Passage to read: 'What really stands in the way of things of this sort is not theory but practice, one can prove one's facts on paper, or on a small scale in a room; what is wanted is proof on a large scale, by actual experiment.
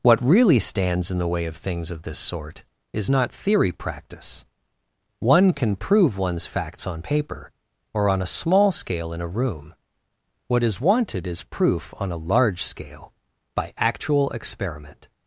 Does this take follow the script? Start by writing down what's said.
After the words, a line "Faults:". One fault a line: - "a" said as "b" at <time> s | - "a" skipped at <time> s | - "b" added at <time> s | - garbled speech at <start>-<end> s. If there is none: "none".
'What really stands in the way of things of this sort is not theory practice, one can prove one's facts on paper, or on a small scale in a room; what is wanted is proof on a large scale, by actual experiment.
Faults:
- "but" skipped at 3.7 s